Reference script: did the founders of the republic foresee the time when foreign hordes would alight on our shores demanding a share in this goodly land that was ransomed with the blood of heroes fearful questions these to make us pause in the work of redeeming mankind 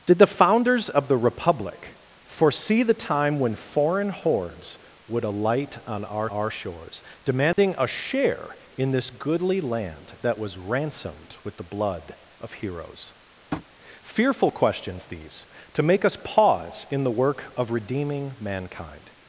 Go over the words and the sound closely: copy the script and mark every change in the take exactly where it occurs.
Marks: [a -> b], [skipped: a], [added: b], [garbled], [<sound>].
did the founders of the republic foresee the time when foreign hordes would alight on our [added: our] shores demanding [dropout] a share in this goodly land that was ransomed with the blood of heroes [tap] fearful questions these to make us pause in the work of redeeming mankind